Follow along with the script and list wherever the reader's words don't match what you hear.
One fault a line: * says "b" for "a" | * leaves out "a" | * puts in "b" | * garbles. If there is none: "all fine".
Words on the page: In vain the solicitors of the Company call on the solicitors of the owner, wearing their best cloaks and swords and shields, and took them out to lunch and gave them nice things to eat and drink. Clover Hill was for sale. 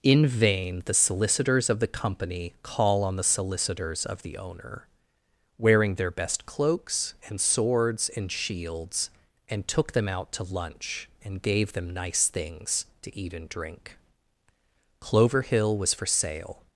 all fine